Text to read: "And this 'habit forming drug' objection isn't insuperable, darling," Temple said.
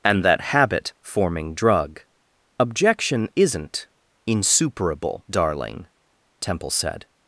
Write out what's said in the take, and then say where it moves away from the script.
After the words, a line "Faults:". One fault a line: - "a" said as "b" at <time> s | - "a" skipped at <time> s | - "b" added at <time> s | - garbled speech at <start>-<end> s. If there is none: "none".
"And that 'habit forming drug' objection isn't insuperable, darling," Temple said.
Faults:
- "this" said as "that" at 0.2 s